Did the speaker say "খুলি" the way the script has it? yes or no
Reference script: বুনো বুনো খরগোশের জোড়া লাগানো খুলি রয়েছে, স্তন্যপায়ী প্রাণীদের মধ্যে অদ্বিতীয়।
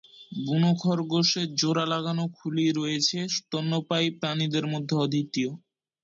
yes